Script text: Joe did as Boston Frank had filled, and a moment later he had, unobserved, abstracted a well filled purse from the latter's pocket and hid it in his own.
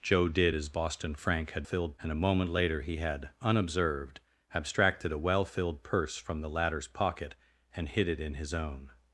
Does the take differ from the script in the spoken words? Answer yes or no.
no